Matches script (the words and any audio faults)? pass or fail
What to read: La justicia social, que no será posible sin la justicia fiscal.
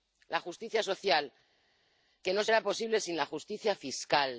pass